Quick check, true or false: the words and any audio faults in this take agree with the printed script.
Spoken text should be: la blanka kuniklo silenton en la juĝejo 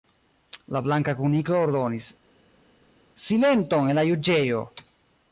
false